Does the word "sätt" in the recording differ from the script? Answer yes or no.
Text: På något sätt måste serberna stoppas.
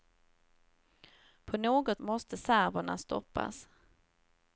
yes